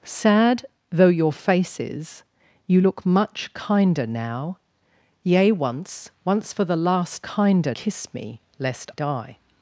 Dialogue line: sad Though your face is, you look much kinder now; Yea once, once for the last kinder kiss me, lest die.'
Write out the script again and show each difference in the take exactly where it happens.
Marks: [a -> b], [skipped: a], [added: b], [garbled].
sad Though your face is, you look much kinder now; Yea once, once for the last kinder kiss me, lest die.'